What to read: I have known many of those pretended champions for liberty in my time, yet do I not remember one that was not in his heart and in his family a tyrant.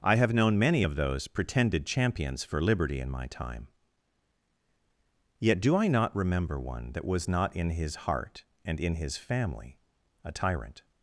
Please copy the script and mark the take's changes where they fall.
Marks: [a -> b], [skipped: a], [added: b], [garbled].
I have known many of those pretended champions for liberty in my time, yet do I not remember one that was not in his heart and in his family a tyrant.